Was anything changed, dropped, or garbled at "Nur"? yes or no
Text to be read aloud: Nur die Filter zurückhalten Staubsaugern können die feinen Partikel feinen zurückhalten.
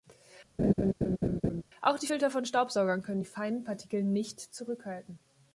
yes